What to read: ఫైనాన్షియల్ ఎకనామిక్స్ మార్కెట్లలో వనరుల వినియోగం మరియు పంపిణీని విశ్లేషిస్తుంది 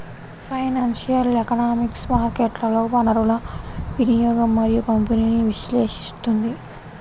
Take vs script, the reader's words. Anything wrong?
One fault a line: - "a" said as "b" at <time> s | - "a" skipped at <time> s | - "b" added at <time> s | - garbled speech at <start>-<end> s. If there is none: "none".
none